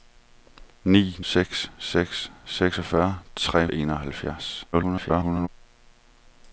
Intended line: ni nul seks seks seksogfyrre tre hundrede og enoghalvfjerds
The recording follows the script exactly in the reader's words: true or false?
false